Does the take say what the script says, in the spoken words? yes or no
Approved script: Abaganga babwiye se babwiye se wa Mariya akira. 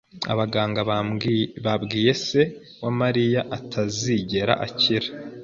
no